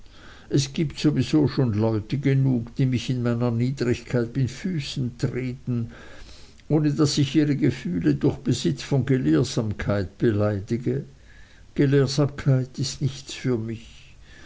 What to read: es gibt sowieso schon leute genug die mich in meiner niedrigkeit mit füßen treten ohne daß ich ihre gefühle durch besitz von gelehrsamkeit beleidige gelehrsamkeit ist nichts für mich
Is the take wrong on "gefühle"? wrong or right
right